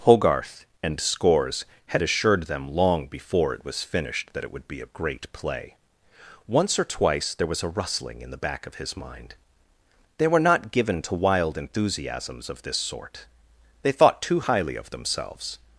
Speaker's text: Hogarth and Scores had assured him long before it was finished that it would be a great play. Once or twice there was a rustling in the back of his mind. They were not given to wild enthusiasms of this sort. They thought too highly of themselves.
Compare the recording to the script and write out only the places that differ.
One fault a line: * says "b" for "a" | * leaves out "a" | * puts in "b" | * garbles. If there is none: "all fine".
* says "them" for "him"